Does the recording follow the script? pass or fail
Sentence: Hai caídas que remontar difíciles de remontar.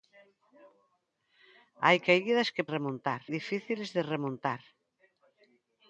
pass